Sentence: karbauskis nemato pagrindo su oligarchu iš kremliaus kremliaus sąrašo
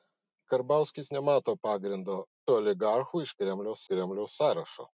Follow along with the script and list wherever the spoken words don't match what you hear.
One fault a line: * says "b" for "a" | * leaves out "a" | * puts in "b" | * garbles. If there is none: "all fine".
all fine